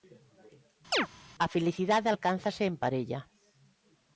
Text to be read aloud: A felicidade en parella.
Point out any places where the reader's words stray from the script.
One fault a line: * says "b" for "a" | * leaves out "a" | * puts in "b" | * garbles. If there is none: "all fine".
* puts in "alcánzase"